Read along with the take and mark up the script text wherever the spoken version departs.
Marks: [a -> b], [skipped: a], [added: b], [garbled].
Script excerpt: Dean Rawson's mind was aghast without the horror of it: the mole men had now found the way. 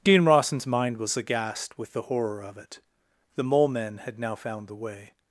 Dean Rawson's mind was aghast [without -> with] the horror of it: the mole men had now found the way.